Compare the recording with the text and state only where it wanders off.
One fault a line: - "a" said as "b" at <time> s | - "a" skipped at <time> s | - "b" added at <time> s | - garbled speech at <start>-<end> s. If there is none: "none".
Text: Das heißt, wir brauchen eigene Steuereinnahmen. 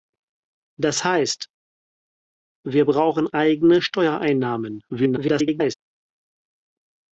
- garbled speech at 4.9-5.7 s